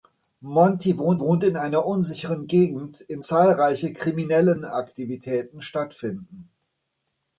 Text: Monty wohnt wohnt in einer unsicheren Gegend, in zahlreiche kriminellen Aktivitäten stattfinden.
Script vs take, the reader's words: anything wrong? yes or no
no